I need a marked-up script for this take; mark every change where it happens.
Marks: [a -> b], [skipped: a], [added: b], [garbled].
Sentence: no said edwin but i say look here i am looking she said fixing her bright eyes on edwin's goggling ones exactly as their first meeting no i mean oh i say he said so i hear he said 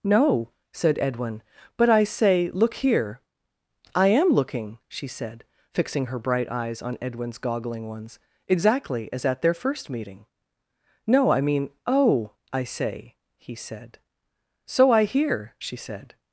no said edwin but i say look here i am looking she said fixing her bright eyes on edwin's goggling ones exactly as [added: at] their first meeting no i mean oh i say he said so i hear [he -> she] said